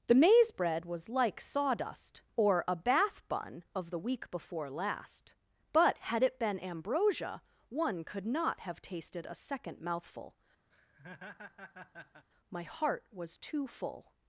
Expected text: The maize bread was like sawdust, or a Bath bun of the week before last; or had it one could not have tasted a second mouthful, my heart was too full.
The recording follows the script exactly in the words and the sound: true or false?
false